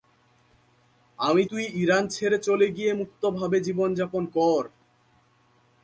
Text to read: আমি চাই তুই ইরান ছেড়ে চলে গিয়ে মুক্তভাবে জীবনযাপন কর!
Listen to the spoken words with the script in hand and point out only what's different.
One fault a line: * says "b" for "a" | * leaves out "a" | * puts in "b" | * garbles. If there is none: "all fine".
* leaves out "চাই"